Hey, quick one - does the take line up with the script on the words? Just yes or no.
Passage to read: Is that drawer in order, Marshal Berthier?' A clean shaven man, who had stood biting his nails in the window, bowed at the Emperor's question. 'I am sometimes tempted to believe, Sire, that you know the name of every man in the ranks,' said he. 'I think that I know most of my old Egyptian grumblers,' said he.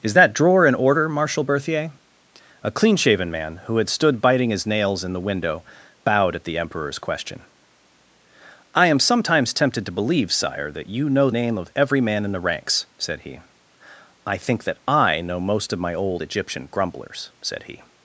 no